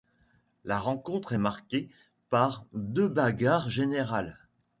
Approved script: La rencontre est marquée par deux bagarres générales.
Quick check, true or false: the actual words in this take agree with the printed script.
true